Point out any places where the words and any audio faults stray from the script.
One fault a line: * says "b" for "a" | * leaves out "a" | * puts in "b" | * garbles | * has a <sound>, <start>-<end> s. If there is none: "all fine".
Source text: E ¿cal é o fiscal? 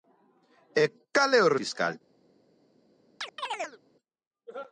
* has a chirp, 3.2-3.8 s